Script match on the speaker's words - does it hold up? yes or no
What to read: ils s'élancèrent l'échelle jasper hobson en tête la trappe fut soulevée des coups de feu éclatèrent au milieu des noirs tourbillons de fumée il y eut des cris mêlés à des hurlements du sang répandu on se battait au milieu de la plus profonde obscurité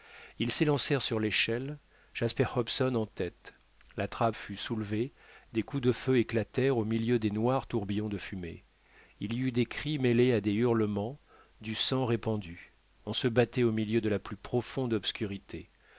no